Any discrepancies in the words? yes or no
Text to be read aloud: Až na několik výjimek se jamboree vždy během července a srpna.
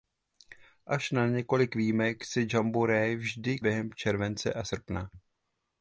no